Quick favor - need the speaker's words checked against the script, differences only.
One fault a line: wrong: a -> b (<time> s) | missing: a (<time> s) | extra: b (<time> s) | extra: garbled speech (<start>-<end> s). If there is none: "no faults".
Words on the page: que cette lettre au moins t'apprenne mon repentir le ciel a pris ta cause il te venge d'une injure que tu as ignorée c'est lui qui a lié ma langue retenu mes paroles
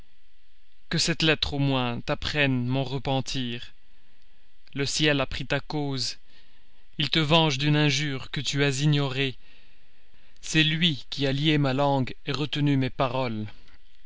no faults